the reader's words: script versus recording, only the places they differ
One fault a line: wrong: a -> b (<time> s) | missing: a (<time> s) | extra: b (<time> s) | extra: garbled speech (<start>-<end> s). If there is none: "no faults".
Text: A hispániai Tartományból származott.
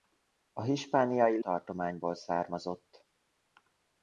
no faults